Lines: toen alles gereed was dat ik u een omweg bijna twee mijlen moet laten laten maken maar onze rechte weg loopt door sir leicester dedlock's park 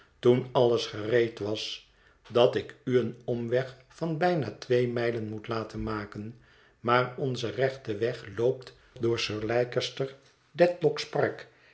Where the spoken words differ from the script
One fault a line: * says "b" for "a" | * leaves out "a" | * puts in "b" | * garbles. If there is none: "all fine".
* puts in "van"
* leaves out "laten"